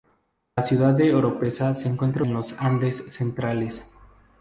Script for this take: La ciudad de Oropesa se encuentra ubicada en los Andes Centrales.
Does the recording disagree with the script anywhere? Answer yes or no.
yes